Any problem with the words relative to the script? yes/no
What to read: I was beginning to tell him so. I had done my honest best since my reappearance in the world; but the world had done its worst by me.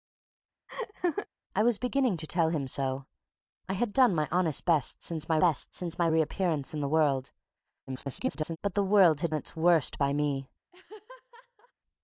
yes